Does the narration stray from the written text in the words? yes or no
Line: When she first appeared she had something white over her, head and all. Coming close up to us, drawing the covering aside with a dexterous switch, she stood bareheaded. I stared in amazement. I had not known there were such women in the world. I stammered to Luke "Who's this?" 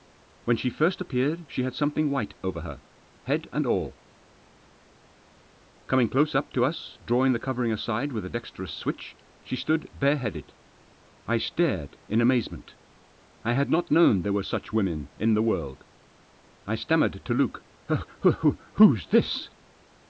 no